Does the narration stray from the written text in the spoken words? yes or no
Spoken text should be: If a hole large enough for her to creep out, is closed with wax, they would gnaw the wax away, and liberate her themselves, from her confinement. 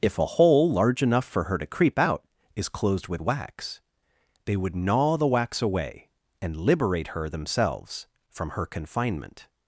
no